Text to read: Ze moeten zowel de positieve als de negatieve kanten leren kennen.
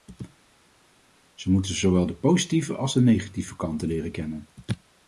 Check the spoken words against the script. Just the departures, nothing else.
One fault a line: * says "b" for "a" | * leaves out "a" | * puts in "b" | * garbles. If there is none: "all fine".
all fine